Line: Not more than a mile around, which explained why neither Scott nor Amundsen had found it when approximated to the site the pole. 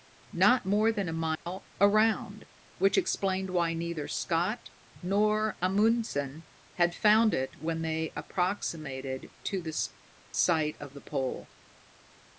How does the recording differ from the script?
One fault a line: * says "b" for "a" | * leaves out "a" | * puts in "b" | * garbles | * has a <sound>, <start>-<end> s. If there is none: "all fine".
* has a dropout, 1.4-1.5 s
* puts in "they"
* puts in "of"